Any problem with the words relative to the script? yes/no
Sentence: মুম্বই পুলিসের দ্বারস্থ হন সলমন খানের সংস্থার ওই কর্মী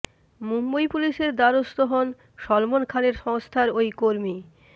no